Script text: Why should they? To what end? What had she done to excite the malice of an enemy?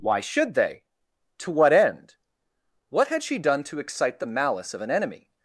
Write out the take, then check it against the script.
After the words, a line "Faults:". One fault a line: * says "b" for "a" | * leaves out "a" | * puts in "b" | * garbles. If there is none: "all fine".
Why should they? To what end? What had she done to excite the malice of an enemy?
Faults:
all fine